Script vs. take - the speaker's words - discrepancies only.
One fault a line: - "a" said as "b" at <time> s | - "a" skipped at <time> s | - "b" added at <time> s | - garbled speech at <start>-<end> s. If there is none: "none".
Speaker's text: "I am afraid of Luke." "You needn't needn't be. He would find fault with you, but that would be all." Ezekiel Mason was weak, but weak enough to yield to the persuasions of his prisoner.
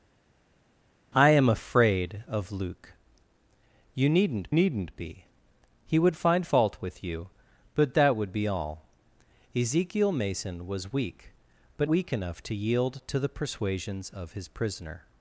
none